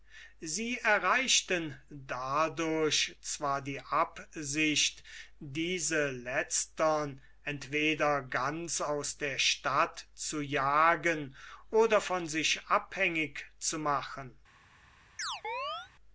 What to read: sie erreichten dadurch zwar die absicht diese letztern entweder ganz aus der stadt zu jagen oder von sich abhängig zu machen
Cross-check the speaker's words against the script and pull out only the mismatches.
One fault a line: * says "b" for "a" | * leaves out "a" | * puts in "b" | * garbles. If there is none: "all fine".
all fine